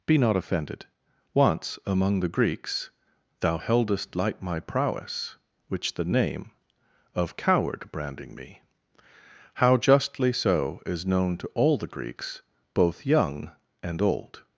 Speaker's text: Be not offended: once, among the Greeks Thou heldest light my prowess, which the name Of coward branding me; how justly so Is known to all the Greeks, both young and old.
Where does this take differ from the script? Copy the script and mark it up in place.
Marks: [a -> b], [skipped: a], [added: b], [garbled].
Be not offended: once, among the Greeks Thou heldest light my prowess, which the name Of coward branding me; how justly so Is known to all the Greeks, both young and old.